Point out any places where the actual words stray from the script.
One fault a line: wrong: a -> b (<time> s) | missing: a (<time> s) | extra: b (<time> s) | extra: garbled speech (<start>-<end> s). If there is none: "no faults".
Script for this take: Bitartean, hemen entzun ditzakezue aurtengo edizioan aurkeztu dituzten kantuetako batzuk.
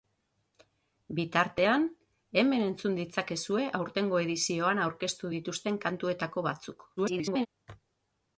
extra: garbled speech (7.0-7.5 s)